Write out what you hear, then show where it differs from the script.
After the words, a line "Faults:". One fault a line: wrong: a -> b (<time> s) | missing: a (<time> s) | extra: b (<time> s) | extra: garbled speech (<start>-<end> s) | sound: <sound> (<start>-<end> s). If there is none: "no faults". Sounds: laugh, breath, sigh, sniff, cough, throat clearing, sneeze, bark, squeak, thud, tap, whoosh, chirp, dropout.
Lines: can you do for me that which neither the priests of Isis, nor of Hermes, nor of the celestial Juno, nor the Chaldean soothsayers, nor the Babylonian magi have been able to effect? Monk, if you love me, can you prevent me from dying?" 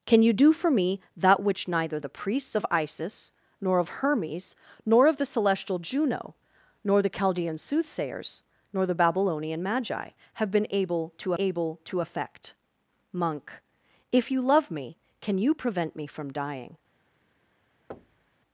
can you do for me that which neither the priests of Isis, nor of Hermes, nor of the celestial Juno, nor the Chaldean soothsayers, nor the Babylonian magi have been able to able to effect? Monk, if you love me, can you prevent me from dying?"
Faults:
extra: able to (11.4 s)
sound: thud (17.9-18.3 s)